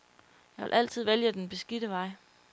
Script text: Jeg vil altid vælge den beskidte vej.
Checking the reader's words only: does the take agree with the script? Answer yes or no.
yes